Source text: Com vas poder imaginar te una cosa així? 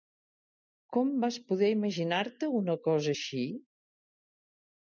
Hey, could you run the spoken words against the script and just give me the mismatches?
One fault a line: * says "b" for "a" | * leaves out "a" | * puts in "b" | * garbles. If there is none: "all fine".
all fine